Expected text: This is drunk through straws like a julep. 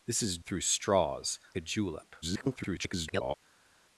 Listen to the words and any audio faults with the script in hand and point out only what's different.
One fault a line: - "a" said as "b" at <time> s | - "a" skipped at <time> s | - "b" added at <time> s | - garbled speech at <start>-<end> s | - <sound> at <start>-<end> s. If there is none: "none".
- "drunk" skipped at 0.4 s
- "like" skipped at 1.4 s
- garbled speech at 2.2-3.3 s